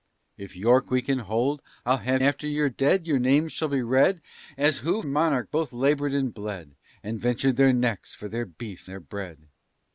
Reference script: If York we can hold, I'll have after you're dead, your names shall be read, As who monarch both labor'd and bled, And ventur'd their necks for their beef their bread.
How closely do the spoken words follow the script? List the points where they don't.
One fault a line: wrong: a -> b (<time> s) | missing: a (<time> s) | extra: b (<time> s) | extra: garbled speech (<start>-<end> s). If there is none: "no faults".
no faults